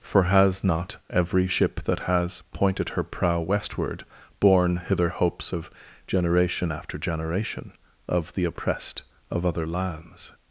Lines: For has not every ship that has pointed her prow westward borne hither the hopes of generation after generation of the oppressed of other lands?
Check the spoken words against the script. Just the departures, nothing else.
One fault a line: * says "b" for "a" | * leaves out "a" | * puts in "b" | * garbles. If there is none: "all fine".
* leaves out "the"